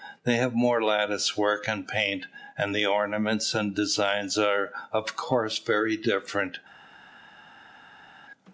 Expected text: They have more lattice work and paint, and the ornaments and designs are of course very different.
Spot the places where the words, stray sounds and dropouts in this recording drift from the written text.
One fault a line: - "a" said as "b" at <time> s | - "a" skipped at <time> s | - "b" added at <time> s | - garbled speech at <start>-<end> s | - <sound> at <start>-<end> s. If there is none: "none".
none